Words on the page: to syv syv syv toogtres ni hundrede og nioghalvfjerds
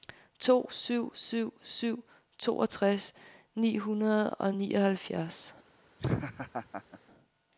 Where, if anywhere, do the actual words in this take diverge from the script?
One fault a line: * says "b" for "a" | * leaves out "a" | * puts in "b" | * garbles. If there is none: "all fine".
all fine